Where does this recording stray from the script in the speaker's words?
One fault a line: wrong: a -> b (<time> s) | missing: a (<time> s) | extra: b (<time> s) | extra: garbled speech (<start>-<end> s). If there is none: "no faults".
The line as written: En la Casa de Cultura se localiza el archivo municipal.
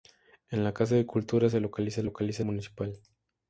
wrong: archivo -> localiza (2.0 s)